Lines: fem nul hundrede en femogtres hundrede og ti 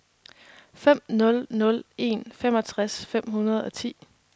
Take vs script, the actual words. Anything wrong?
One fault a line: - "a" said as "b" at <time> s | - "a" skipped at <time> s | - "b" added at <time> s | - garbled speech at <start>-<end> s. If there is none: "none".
- "hundrede" said as "nul" at 1.5 s
- "fem" added at 3.0 s